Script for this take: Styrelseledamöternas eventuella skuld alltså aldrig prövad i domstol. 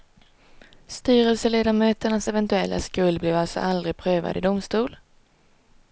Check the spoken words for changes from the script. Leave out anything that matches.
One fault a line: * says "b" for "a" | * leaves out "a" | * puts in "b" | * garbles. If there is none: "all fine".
* puts in "blev"